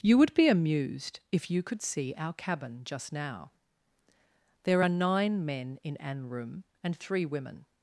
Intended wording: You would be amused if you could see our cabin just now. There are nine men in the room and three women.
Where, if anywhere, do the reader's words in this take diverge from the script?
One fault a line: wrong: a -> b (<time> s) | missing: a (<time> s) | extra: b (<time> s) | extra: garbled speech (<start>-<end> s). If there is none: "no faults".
wrong: the -> an (6.0 s)